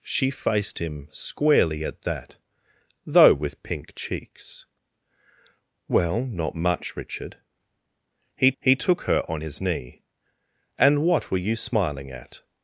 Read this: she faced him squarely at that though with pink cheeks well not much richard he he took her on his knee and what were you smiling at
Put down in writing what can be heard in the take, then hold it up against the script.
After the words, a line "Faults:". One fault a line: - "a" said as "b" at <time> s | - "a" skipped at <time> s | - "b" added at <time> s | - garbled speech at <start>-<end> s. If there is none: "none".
she faced him squarely at that though with pink cheeks well not much richard he he took her on his knee and what were you smiling at
Faults:
none